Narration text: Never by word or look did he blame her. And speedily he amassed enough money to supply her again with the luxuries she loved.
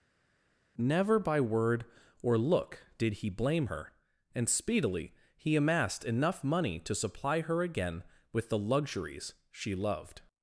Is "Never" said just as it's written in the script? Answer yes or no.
yes